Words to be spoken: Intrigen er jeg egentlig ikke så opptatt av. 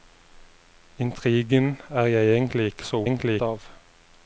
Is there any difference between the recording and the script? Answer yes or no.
yes